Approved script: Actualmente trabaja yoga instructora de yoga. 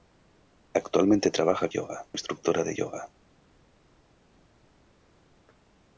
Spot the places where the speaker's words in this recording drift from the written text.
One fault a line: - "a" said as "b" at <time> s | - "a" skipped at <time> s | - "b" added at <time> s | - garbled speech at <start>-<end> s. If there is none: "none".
none